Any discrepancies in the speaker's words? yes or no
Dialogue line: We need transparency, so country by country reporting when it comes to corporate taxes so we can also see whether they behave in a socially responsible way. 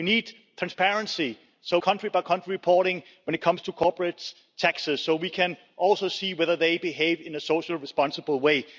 no